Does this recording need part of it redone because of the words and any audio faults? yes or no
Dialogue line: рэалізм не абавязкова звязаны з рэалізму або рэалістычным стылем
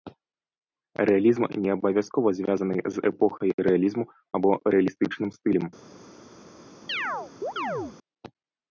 yes